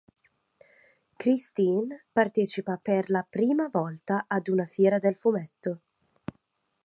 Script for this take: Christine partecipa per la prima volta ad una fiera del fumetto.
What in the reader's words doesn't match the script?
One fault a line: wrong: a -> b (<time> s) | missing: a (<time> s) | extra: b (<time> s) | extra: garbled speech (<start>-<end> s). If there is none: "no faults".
no faults